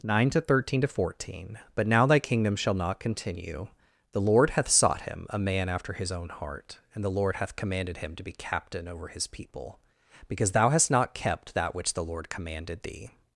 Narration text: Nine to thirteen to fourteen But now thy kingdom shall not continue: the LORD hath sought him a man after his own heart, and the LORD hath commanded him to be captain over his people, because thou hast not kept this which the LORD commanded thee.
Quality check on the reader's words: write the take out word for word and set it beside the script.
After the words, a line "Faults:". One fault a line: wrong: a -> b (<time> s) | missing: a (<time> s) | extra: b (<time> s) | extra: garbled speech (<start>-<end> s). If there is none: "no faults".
Nine to thirteen to fourteen But now thy kingdom shall not continue: the LORD hath sought him a man after his own heart, and the LORD hath commanded him to be captain over his people, because thou hast not kept that which the LORD commanded thee.
Faults:
wrong: this -> that (11.5 s)